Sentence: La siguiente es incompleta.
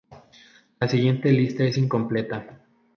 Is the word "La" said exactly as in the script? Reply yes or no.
yes